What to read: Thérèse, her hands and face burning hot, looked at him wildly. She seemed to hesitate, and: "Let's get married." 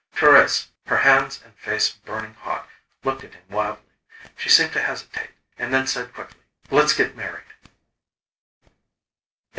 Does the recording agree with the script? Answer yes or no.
no